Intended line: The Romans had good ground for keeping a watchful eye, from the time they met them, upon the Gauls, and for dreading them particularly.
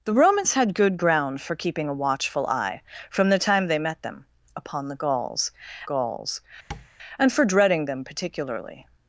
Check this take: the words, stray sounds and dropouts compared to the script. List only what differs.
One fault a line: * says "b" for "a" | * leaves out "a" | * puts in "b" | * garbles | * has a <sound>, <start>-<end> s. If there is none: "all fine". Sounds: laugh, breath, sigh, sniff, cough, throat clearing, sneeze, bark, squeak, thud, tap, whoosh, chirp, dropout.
* puts in "Gauls"
* has a tap, 6.7-6.9 s